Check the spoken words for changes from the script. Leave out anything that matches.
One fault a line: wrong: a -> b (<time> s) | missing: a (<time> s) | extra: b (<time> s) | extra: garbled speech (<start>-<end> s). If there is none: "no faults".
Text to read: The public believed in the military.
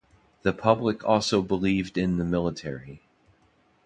extra: also (1.1 s)